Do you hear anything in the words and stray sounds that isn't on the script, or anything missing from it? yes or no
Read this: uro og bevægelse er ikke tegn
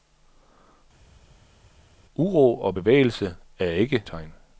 no